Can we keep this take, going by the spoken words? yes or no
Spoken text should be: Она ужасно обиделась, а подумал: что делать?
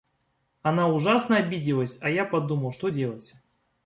no